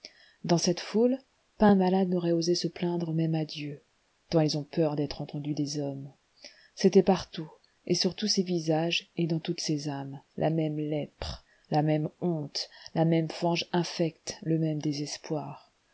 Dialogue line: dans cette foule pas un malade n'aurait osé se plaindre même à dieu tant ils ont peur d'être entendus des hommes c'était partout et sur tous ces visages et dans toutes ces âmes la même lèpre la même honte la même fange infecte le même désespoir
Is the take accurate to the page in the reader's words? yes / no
yes